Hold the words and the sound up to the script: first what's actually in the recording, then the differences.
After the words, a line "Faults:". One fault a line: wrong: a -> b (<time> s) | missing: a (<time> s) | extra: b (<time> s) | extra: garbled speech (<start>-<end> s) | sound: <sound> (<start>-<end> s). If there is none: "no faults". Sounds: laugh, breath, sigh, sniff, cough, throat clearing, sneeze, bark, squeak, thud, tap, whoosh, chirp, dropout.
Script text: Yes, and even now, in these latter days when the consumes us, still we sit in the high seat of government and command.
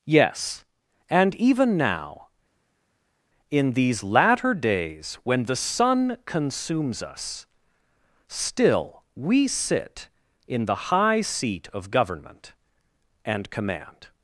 Yes, and even now, in these latter days when the sun consumes us, still we sit in the high seat of government and command.
Faults:
extra: sun (5.5 s)